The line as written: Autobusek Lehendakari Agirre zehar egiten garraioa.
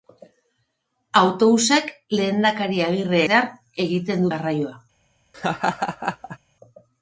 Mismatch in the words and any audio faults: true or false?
true